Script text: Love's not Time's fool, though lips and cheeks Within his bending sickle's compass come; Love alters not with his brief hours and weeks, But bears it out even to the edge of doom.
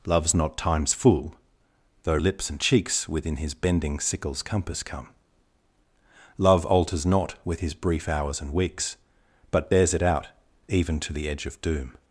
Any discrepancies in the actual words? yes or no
no